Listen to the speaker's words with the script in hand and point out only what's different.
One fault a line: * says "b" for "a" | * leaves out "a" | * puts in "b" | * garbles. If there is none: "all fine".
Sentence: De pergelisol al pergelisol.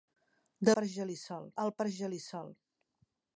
all fine